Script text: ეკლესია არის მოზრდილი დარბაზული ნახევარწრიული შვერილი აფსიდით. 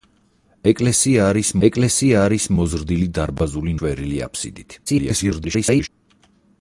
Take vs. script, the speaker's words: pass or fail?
fail